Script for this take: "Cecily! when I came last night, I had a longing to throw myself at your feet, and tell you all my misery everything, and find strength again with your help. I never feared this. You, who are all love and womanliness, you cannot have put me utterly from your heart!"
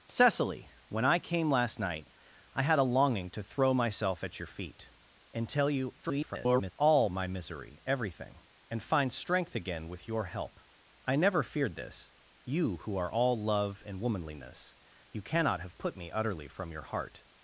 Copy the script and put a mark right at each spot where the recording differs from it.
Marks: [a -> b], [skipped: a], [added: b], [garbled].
"Cecily! when I came last night, I had a longing to throw myself at your feet, and tell you [garbled] all my misery everything, and find strength again with your help. I never feared this. You, who are all love and womanliness, you cannot have put me utterly from your heart!"